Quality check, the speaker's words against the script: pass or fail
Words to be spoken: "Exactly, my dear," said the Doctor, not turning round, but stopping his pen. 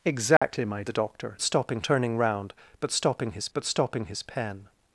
fail